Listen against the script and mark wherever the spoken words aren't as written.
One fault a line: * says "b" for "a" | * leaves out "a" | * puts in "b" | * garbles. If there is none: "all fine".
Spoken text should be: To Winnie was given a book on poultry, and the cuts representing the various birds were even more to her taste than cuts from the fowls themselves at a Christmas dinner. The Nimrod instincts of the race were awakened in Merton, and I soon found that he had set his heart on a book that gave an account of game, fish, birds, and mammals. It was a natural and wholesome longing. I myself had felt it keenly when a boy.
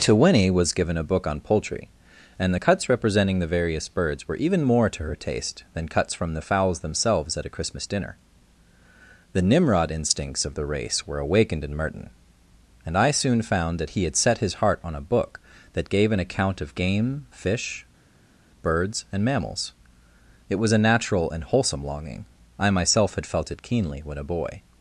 all fine